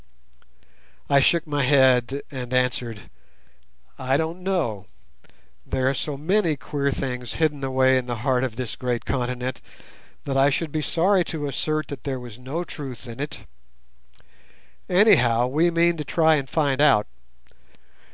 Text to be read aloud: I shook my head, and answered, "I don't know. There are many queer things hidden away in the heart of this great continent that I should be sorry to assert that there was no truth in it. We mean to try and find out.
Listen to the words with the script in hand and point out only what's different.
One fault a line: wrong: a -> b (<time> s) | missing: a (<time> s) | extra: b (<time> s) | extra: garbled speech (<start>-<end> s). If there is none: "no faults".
extra: so (5.9 s)
extra: Anyhow (14.9 s)